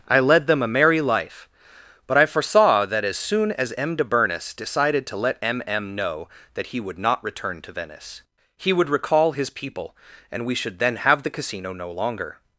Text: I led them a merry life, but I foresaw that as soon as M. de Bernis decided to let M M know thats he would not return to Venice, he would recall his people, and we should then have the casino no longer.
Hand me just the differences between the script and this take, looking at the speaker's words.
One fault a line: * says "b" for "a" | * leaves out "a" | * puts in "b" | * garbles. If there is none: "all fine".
* says "that" for "thats"